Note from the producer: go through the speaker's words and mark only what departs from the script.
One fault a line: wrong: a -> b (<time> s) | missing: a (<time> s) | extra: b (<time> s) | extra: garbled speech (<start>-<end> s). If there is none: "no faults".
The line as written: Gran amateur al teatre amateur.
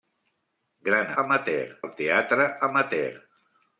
no faults